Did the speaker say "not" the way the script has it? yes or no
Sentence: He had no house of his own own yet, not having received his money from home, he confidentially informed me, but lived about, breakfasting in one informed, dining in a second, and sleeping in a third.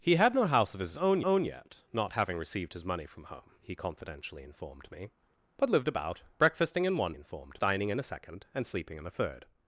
yes